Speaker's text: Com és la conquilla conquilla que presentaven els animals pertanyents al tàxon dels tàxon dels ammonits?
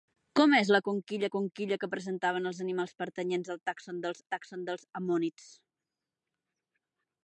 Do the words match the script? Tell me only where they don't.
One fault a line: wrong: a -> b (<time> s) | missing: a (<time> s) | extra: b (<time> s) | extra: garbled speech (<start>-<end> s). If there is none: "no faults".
no faults